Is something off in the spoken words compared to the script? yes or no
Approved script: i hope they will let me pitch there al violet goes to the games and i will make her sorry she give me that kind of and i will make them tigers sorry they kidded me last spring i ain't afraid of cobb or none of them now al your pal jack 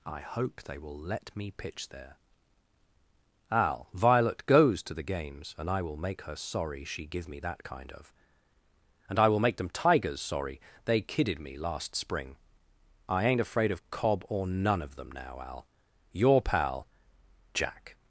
no